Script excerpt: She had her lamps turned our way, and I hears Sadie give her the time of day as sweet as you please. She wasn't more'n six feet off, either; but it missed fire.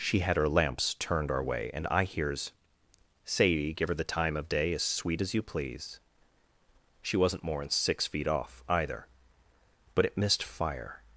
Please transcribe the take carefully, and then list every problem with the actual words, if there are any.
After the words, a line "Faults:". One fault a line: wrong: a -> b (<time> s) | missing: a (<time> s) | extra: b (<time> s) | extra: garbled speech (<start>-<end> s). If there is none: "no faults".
She had her lamps turned our way, and I hears Sadie give her the time of day as sweet as you please. She wasn't more'n six feet off, either; but it missed fire.
Faults:
no faults